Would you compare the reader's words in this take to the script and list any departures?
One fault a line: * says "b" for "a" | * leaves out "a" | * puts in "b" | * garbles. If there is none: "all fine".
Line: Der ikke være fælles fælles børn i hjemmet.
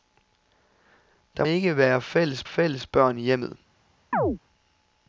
all fine